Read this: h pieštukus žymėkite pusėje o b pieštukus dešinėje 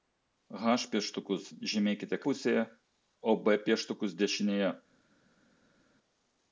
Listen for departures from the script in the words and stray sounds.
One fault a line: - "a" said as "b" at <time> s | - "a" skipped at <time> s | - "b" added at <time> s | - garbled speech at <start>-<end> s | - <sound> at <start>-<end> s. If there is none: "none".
none